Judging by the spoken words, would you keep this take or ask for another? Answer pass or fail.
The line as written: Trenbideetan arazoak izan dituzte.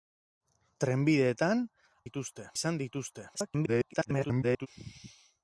fail